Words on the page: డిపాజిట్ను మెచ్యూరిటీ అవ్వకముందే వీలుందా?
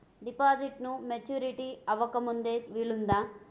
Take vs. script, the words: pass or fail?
pass